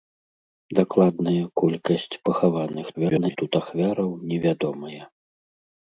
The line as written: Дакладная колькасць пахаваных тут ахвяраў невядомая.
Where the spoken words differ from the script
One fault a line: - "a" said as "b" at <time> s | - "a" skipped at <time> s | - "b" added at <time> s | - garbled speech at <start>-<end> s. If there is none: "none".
- garbled speech at 2.9-3.4 s